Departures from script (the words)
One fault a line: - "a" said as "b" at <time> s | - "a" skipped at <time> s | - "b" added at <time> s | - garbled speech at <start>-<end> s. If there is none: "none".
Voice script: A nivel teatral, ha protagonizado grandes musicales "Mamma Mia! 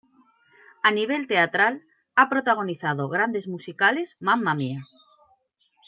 none